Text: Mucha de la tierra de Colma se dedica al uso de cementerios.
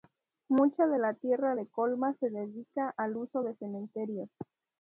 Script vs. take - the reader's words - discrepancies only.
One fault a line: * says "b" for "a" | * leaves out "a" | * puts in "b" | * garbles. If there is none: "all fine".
all fine